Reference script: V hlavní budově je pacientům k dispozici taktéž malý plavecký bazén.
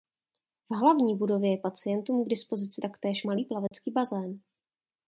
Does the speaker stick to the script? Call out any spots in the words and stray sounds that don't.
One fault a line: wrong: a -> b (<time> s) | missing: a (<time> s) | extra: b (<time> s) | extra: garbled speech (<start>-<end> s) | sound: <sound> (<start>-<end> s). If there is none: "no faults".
sound: dropout (3.7-3.7 s)